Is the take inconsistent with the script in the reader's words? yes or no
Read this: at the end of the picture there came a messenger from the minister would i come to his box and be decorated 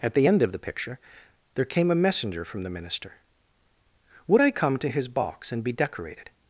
no